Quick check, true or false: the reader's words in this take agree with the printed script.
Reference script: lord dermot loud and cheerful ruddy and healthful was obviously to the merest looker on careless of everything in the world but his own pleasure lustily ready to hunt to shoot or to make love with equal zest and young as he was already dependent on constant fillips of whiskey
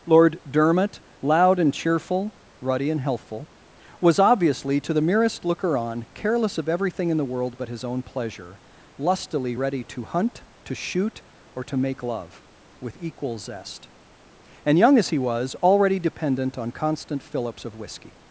true